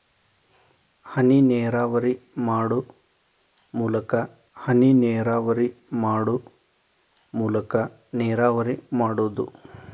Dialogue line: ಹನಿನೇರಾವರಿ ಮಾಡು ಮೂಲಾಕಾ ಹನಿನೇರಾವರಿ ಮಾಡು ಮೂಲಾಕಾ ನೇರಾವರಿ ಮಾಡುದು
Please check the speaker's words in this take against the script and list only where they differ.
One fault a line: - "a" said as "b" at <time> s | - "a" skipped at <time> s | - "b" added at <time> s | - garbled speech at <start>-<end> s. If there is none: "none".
none